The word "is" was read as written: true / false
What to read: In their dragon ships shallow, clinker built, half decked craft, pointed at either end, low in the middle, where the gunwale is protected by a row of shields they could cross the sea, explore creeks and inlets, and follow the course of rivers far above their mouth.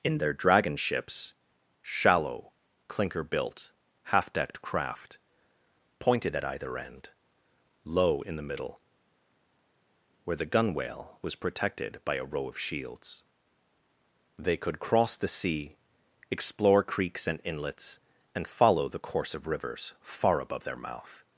false